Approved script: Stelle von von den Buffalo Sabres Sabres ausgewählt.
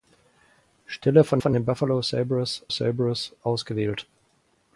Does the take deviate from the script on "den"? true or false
false